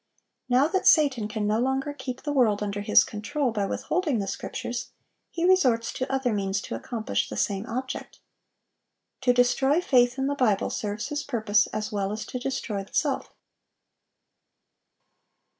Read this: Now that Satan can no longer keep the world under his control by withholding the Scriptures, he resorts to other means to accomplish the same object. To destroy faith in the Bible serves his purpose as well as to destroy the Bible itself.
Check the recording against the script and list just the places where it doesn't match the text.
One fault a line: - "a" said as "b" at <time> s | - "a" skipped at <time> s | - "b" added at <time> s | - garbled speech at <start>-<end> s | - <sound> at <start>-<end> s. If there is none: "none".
- "the Bible" skipped at 12.8 s